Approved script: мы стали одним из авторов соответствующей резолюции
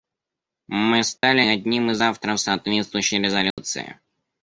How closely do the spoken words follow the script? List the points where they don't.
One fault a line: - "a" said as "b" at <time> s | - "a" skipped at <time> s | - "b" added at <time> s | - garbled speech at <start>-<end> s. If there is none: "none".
none